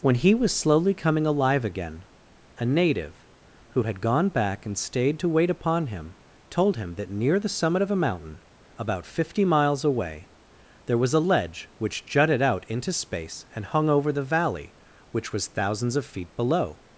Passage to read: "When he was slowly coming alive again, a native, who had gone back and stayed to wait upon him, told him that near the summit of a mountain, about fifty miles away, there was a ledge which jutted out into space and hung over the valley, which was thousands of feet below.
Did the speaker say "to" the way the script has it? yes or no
yes